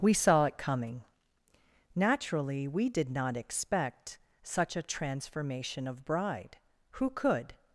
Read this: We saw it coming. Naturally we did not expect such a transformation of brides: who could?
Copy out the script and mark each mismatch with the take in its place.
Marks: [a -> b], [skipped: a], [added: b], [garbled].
We saw it coming. Naturally we did not expect such a transformation of [brides: -> bride] who could?